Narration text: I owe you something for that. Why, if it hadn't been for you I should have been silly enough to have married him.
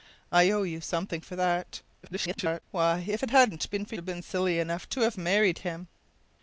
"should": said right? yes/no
no